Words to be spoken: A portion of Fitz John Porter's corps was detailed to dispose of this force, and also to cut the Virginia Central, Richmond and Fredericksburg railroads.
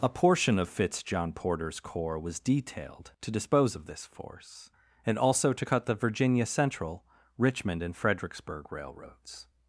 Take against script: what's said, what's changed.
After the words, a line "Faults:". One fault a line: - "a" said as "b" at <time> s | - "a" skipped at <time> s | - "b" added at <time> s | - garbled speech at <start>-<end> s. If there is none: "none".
A portion of Fitz John Porter's corps was detailed to dispose of this force, and also to cut the Virginia Central, Richmond and Fredericksburg railroads.
Faults:
none